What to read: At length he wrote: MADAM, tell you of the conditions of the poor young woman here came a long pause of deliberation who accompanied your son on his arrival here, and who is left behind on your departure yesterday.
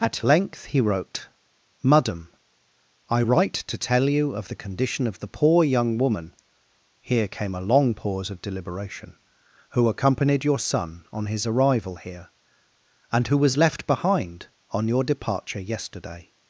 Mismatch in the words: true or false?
true